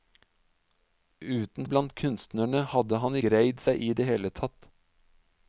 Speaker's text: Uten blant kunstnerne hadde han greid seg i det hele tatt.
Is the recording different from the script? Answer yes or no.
no